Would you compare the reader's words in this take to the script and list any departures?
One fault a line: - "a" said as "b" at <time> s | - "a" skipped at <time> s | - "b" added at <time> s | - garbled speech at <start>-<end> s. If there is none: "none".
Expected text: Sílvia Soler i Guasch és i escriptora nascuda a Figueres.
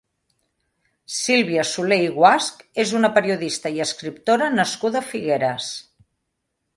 - "una periodista" added at 3.0 s